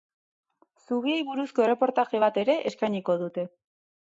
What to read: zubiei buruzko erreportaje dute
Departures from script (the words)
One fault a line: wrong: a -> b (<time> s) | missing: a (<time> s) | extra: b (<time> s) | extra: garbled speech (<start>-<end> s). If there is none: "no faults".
extra: bat ere eskainiko (2.3 s)